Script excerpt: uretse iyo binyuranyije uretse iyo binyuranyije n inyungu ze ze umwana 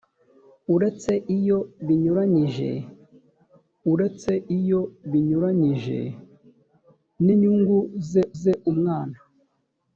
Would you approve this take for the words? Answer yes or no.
yes